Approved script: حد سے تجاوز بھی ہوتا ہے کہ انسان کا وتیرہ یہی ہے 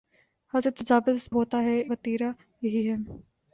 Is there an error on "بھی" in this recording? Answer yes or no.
yes